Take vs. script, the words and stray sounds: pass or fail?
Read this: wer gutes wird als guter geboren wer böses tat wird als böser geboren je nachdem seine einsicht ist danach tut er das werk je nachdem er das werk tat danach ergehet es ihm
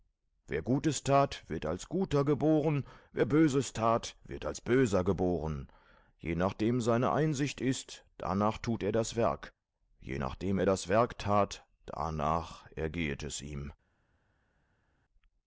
fail